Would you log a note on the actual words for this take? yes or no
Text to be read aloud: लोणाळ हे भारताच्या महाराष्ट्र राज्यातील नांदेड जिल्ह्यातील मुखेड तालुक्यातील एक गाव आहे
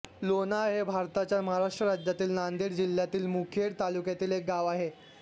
no